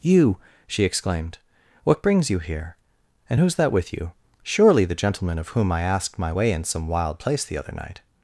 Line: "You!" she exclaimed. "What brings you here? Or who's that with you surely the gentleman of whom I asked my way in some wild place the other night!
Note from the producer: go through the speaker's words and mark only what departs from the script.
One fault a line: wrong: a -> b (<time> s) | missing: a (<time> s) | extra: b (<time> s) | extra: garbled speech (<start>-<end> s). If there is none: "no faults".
wrong: Or -> And (3.3 s)